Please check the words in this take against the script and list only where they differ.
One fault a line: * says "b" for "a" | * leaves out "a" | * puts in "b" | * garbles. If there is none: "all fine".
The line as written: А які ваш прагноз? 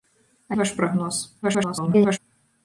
* leaves out "які"
* garbles